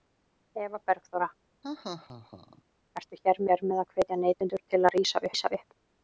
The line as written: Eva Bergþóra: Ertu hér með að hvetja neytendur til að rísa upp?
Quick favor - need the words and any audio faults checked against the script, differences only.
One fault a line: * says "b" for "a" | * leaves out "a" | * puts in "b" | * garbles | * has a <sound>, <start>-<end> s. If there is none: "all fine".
* has a laugh, 1.6-2.6 s
* puts in "hér"
* puts in "rísa"